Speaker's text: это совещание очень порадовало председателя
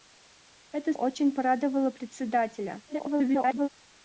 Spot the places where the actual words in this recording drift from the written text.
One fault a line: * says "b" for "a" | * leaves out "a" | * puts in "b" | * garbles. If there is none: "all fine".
* leaves out "совещание"
* garbles